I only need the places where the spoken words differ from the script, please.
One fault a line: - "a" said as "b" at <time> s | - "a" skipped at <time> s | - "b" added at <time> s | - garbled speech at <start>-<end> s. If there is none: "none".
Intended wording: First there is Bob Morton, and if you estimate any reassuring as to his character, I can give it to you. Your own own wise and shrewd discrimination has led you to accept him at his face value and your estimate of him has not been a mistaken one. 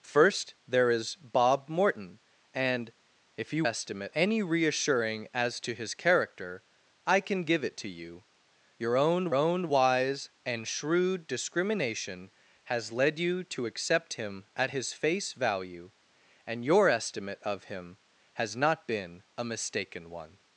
none